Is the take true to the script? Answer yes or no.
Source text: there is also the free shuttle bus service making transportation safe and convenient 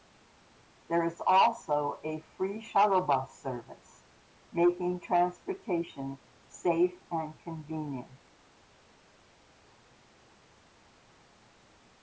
no